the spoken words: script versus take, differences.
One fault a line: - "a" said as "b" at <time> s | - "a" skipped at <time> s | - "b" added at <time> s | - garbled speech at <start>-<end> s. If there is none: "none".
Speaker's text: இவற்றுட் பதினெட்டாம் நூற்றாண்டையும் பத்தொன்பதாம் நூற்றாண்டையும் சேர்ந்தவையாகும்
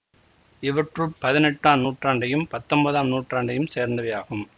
none